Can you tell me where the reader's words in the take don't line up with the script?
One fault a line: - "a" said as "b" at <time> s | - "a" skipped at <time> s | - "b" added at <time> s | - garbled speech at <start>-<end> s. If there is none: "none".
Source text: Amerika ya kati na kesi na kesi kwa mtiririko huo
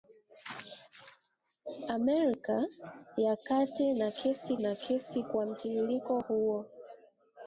none